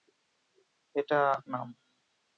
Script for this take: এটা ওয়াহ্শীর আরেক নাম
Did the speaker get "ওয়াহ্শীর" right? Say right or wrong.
wrong